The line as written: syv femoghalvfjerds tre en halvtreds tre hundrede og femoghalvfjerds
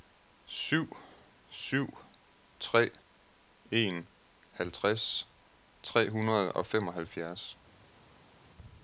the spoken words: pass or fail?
fail